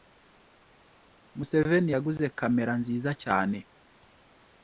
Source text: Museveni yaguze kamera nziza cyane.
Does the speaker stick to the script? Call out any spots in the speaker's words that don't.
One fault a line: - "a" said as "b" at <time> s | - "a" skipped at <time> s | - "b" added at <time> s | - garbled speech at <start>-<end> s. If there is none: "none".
none